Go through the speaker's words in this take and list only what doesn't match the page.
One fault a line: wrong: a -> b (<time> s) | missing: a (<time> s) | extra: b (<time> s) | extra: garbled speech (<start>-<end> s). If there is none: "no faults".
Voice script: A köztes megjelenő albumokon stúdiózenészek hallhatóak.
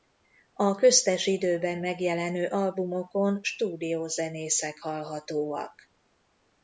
extra: időben (1.3 s)